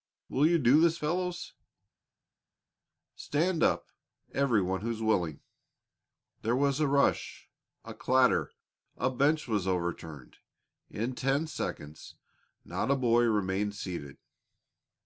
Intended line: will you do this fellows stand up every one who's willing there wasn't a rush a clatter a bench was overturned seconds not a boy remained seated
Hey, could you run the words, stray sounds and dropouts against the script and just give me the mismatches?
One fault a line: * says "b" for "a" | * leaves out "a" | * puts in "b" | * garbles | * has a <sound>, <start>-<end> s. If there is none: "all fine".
* says "was" for "wasn't"
* puts in "in ten"